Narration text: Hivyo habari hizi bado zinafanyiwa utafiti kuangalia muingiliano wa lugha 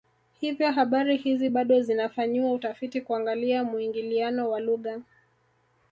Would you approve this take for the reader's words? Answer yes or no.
yes